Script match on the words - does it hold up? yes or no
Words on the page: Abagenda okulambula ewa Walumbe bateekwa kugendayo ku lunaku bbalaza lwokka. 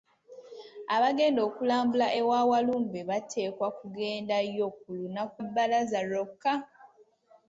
yes